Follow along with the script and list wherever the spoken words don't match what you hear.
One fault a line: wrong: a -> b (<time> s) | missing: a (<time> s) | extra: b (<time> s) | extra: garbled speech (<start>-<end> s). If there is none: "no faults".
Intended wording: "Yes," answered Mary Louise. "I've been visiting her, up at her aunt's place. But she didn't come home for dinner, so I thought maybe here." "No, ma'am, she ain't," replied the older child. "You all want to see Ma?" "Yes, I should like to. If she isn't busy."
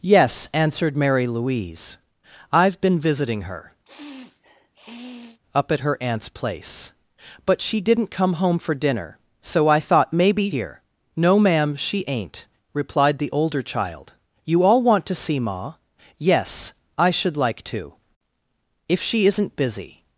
no faults